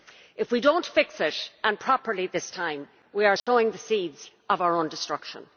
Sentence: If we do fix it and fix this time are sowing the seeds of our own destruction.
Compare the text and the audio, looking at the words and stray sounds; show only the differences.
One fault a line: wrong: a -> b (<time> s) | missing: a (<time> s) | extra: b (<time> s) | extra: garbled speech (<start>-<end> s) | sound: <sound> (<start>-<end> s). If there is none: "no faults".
extra: not (0.7 s)
wrong: fix -> properly (1.8 s)
extra: we (3.1 s)
sound: dropout (3.4-3.5 s)